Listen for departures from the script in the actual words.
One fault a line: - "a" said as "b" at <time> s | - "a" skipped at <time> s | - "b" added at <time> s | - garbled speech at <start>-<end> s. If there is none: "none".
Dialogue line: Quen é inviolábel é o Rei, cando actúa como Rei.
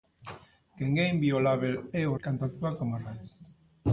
- "Rei" skipped at 2.1 s